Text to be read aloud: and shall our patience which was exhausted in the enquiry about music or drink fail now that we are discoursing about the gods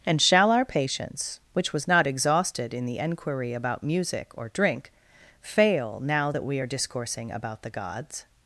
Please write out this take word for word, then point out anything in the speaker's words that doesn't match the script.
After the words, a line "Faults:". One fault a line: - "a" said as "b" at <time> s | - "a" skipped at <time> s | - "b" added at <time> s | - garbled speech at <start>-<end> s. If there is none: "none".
and shall our patience which was not exhausted in the enquiry about music or drink fail now that we are discoursing about the gods
Faults:
- "not" added at 1.9 s